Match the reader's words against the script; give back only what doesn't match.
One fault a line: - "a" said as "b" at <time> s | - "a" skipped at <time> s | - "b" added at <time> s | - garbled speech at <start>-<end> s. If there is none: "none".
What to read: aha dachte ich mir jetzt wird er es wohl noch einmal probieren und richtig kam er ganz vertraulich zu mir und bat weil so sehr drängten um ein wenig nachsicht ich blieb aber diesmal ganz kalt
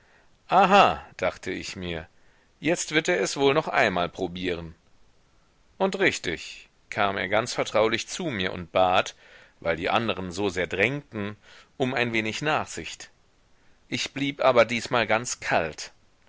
- "die anderen" added at 9.8 s